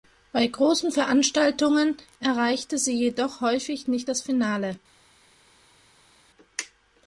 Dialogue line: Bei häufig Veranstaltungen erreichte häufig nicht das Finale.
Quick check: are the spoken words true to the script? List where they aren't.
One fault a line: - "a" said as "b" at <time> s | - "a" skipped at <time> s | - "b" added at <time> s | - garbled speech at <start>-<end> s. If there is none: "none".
- "häufig" said as "großen" at 0.5 s
- "sie jedoch" added at 2.8 s